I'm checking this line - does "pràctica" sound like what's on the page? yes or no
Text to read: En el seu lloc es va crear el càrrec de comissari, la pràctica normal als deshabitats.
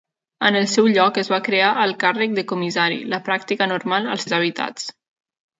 yes